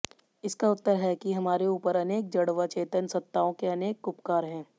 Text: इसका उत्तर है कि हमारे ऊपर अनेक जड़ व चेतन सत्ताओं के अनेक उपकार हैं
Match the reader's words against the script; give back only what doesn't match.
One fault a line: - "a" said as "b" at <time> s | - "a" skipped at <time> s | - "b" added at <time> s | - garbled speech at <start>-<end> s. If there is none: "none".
none